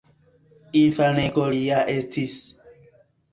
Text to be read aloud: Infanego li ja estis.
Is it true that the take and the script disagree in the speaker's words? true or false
false